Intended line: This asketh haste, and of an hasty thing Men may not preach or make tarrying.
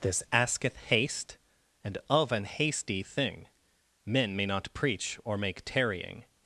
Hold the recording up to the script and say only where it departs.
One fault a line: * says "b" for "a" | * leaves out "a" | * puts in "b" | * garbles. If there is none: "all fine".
all fine